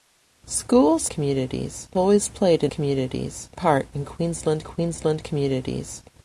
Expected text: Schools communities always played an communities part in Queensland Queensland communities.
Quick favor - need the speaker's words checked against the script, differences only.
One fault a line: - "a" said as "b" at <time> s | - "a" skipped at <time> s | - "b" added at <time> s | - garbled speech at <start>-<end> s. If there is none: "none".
none